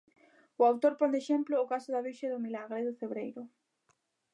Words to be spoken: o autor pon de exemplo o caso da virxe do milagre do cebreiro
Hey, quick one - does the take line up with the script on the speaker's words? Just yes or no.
yes